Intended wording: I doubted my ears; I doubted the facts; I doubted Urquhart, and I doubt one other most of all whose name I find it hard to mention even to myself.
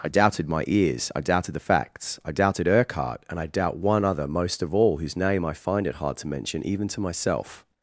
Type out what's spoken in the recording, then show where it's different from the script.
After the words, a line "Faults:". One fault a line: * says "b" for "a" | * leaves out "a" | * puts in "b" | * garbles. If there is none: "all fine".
I doubted my ears; I doubted the facts; I doubted Urquhart, and I doubt one other most of all whose name I find it hard to mention even to myself.
Faults:
all fine